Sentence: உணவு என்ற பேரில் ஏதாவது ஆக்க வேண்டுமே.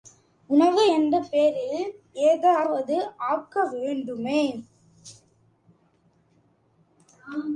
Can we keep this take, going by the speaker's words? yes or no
yes